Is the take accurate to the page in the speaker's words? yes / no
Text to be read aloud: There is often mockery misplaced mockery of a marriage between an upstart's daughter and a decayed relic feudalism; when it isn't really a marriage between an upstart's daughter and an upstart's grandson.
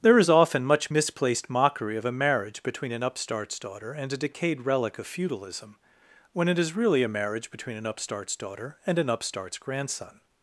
no